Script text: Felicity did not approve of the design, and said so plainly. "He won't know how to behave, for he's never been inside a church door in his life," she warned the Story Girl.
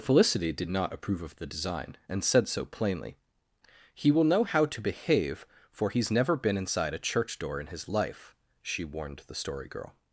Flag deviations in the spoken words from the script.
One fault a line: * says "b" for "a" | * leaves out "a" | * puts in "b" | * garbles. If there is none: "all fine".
* says "will" for "won't"